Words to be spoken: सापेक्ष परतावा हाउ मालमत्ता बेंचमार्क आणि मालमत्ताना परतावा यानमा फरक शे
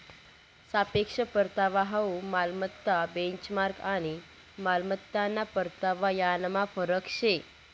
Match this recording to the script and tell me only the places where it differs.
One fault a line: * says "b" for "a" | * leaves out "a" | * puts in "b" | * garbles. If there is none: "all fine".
all fine